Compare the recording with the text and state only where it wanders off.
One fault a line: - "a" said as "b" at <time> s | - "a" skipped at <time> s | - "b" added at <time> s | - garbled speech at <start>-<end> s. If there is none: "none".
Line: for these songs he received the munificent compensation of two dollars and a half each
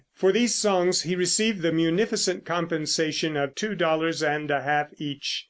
none